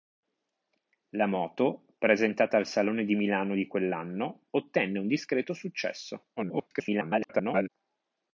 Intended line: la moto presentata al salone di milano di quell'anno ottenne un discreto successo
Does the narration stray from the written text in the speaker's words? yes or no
yes